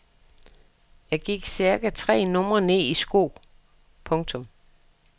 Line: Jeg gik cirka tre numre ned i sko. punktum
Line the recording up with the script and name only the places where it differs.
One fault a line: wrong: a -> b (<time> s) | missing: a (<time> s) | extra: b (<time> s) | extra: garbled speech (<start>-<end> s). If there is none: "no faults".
no faults